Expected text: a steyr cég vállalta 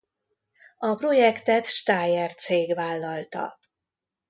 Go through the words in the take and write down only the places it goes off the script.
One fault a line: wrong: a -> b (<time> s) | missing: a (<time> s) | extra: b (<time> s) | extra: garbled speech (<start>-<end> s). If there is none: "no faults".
extra: projektet (0.9 s)